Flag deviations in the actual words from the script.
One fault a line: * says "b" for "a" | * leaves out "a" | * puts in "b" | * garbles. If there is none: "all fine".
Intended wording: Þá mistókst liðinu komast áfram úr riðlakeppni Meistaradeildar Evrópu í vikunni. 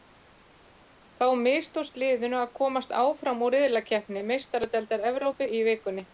* puts in "að"